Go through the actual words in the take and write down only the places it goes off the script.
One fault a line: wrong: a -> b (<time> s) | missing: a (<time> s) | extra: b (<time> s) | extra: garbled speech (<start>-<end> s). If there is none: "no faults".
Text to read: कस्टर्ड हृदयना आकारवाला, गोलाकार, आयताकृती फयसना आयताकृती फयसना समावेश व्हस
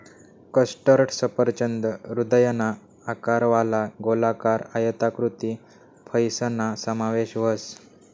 extra: सफरचंद (1.1 s)
missing: आयताकृती फयसना (6.7 s)